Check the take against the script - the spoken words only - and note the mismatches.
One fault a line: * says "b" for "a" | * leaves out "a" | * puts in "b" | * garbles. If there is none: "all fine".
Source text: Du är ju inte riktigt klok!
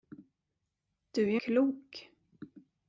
* leaves out "inte riktigt"